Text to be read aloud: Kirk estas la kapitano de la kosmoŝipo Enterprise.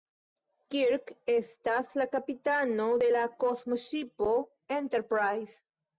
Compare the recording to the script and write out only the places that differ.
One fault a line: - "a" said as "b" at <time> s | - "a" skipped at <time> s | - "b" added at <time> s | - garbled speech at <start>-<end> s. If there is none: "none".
none